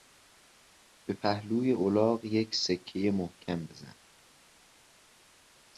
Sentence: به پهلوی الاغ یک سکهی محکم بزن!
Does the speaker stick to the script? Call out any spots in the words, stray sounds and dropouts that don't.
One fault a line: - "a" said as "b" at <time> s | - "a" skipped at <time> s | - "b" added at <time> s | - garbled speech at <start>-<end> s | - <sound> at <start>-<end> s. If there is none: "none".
none